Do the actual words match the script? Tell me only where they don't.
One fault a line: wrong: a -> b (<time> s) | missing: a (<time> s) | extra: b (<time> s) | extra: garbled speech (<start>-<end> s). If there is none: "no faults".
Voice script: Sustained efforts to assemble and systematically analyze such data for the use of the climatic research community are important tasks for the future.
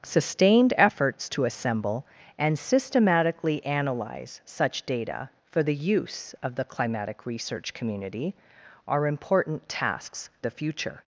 missing: for (10.3 s)